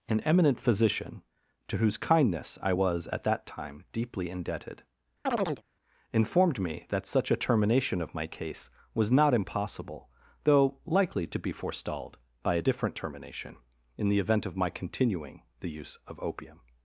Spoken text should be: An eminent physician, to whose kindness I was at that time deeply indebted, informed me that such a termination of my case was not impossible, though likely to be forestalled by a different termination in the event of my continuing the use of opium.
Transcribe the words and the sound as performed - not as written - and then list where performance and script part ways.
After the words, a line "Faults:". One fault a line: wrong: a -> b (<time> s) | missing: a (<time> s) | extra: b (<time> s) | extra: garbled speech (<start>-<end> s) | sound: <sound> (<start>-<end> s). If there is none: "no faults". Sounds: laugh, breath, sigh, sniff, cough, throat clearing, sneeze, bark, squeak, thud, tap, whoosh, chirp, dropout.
An eminent physician, to whose kindness I was at that time deeply indebted, informed me that such a termination of my case was not impossible, though likely to be forestalled by a different termination in the event of my continuing the use of opium.
Faults:
sound: chirp (5.3-5.6 s)